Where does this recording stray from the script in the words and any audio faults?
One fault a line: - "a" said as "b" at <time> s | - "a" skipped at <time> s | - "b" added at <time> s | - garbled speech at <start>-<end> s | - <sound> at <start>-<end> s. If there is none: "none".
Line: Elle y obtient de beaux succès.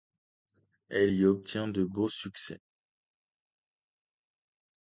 none